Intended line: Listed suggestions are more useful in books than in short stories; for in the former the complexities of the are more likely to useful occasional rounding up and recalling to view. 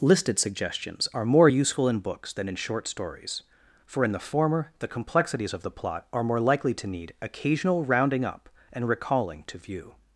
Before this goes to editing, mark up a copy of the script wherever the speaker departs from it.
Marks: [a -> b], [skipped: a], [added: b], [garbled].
Listed suggestions are more useful in books than in short stories; for in the former the complexities of the [added: plot] are more likely to [useful -> need] occasional rounding up and recalling to view.